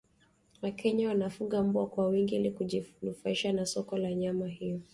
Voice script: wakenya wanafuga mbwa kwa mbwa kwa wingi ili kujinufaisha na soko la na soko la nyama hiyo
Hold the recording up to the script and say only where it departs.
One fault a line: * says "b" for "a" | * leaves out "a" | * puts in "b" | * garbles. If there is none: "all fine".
* leaves out "mbwa kwa"
* leaves out "na soko la"